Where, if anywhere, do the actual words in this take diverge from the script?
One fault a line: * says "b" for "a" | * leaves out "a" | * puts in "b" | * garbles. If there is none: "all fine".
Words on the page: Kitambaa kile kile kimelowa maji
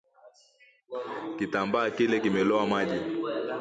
* leaves out "kile"